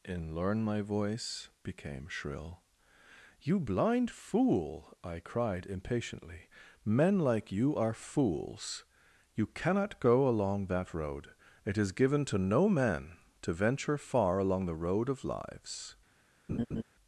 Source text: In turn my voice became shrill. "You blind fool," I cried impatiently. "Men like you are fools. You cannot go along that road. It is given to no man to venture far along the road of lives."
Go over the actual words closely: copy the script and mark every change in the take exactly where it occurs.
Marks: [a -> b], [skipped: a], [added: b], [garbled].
In [turn -> learn] my voice became shrill. "You blind fool," I cried impatiently. "Men like you are fools. You cannot go along that road. It is given to no man to venture far along the road of lives."